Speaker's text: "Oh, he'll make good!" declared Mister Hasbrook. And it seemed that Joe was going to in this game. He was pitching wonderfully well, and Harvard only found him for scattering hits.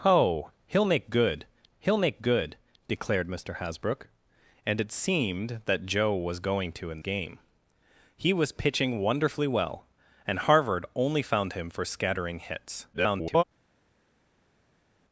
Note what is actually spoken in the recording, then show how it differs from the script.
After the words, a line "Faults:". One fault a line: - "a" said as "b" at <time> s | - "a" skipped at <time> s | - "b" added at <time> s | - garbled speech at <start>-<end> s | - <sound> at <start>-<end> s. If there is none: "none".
"Oh, he'll make good he'll make good!" declared Mister Hasbrook. And it seemed that Joe was going to in game. He was pitching wonderfully well, and Harvard only found him for scattering hits. [garbled]
Faults:
- "he'll make good" added at 1.8 s
- "this" skipped at 7.0 s
- garbled speech at 12.9-13.4 s